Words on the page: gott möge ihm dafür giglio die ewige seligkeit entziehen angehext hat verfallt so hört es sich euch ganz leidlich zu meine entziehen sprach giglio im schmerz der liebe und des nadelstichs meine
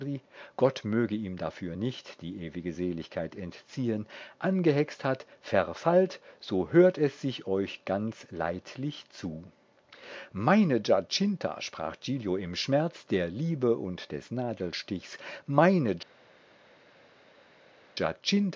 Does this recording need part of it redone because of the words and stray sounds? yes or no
yes